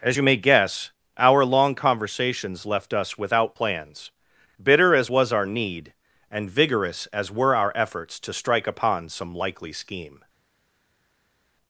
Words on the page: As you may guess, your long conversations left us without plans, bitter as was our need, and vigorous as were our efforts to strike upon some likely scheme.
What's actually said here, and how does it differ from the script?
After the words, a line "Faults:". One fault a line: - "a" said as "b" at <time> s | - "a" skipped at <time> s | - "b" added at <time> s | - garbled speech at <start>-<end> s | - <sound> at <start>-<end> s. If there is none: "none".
As you may guess, our long conversations left us without plans, bitter as was our need, and vigorous as were our efforts to strike upon some likely scheme.
Faults:
- "your" said as "our" at 1.2 s